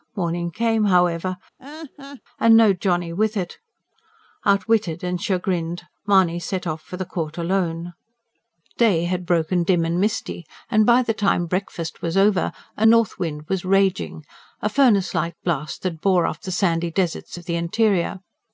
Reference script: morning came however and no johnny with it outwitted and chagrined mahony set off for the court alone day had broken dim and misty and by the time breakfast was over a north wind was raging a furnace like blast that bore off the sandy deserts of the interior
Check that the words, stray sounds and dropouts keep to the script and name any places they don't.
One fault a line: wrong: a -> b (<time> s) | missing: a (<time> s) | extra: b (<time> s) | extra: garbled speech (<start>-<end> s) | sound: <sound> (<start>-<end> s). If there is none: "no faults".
sound: laugh (1.6-2.2 s)